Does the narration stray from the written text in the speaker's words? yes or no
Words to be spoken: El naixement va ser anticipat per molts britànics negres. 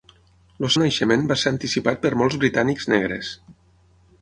no